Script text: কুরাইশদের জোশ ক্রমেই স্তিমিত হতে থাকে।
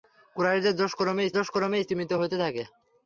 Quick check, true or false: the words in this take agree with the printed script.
false